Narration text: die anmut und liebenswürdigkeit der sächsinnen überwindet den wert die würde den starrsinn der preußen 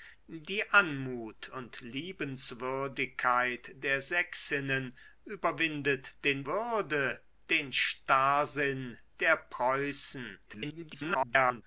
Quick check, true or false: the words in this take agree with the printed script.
false